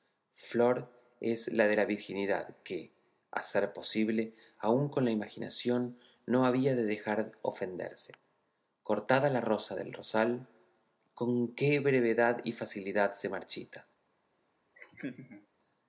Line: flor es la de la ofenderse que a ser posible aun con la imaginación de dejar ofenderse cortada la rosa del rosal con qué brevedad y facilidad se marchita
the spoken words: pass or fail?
fail